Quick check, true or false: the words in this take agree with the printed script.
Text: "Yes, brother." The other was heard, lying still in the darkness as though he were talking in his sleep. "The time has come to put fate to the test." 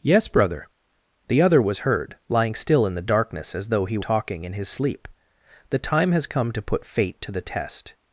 false